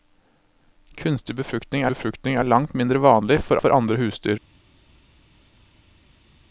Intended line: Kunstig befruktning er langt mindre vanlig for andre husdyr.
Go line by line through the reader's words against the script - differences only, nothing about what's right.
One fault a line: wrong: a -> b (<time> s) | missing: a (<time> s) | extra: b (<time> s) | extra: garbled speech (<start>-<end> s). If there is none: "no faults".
extra: befruktning (1.9 s)
extra: for (3.5 s)